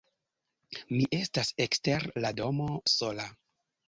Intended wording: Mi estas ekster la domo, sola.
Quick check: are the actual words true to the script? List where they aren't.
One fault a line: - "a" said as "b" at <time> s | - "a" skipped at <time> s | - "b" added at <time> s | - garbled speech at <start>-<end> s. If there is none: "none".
none